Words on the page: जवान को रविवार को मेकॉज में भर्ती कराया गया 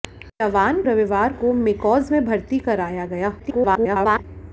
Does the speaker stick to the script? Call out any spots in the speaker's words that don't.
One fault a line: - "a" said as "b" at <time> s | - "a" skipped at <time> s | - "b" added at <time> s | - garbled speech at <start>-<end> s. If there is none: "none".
- "को" skipped at 0.8 s
- garbled speech at 3.4-4.2 s